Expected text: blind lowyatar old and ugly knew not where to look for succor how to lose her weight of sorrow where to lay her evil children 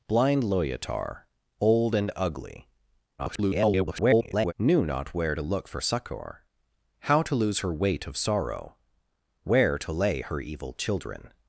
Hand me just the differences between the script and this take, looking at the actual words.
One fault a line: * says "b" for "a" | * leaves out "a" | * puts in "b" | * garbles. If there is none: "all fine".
* garbles